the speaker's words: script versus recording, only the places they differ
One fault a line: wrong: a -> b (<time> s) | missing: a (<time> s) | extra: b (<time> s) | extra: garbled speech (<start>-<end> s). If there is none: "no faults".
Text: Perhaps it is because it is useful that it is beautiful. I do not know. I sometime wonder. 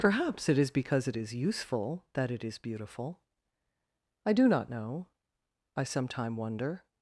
no faults